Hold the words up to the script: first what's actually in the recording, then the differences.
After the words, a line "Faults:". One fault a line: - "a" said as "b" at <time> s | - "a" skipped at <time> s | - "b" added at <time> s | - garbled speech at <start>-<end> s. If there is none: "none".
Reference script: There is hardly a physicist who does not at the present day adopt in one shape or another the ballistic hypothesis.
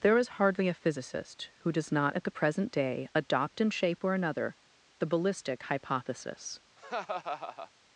There is hardly a physicist who does not at the present day adopt in shape or another the ballistic hypothesis.
Faults:
- "one" skipped at 3.7 s